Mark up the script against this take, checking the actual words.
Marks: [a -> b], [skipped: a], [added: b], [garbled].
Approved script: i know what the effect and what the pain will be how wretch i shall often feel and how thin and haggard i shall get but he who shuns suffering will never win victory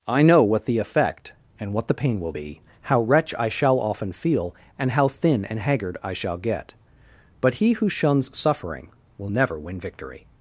i know what the effect and what the pain will be how wretch i shall often feel and how thin and haggard i shall get but he who shuns suffering will never win victory